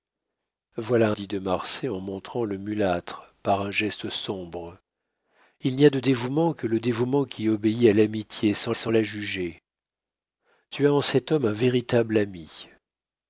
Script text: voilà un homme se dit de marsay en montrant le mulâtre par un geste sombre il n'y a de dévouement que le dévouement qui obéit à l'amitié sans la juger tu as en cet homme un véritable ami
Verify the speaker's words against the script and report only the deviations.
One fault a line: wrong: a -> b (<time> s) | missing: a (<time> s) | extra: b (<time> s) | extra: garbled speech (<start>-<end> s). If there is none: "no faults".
missing: un homme se (1.1 s)
extra: sans (8.7 s)